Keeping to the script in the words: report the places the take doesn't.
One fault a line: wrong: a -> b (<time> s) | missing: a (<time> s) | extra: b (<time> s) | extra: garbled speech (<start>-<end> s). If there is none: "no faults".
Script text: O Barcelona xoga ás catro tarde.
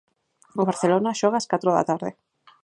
extra: da (1.8 s)